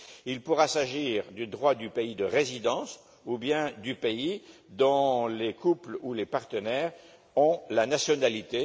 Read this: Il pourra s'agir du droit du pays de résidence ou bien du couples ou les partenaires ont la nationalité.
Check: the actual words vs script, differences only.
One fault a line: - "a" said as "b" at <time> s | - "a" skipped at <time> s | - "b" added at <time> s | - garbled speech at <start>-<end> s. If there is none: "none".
- "pays dont les" added at 4.0 s